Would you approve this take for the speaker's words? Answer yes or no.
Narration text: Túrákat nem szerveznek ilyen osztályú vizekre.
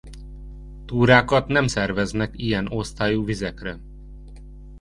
yes